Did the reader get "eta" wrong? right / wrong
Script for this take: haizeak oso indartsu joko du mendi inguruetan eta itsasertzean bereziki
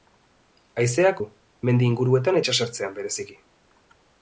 wrong